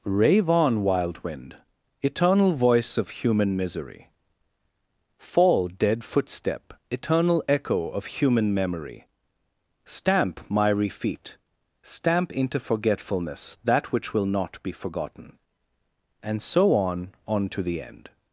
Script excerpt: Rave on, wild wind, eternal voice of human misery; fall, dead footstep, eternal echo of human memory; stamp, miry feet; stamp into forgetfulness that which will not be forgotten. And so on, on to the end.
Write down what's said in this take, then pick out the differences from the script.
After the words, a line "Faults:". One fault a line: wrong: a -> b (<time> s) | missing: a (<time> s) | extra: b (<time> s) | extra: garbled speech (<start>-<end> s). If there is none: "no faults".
Rave on, wild wind, eternal voice of human misery; fall, dead footstep, eternal echo of human memory; stamp, miry feet; stamp into forgetfulness that which will not be forgotten. And so on, on to the end.
Faults:
no faults